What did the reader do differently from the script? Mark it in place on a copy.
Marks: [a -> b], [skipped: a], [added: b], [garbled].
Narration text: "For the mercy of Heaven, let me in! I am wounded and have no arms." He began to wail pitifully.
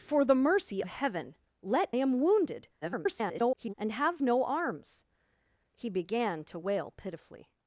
"For the mercy [skipped: of] Heaven, let [skipped: me in! I] am wounded [garbled] and have no arms." He began to wail pitifully.